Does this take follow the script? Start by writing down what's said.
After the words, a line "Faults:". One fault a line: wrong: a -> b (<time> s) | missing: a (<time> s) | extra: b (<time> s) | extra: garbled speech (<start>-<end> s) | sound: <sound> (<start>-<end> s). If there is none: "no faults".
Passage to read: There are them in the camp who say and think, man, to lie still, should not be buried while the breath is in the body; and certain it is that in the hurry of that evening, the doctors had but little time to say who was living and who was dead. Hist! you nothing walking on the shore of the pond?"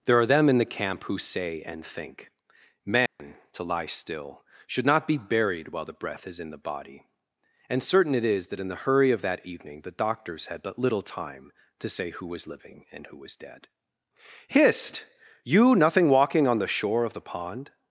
There are them in the camp who say and think, man, to lie still, should not be buried while the breath is in the body; and certain it is that in the hurry of that evening, the doctors had but little time to say who was living and who was dead. Hist! you nothing walking on the shore of the pond?"
Faults:
sound: dropout (3.1-3.2 s)